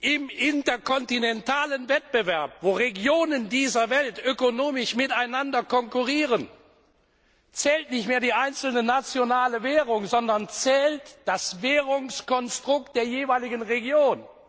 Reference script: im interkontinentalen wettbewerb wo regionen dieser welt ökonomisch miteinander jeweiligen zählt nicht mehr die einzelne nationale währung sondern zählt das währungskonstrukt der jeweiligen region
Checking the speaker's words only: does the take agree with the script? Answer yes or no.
no